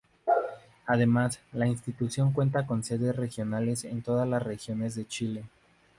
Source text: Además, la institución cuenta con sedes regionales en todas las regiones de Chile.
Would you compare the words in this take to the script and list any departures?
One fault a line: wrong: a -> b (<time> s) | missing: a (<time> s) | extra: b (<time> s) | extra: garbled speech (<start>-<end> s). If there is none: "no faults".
no faults